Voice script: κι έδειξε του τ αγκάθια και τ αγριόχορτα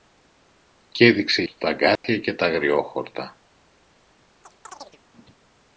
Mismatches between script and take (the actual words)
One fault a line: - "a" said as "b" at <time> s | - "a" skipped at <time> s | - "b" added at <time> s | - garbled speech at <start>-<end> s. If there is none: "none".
none